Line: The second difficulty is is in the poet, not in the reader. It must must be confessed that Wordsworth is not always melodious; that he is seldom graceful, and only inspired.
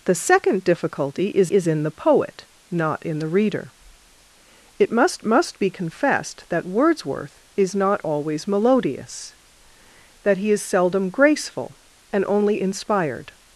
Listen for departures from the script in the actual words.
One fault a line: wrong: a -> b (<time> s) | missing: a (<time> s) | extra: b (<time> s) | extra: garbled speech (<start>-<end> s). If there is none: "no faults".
no faults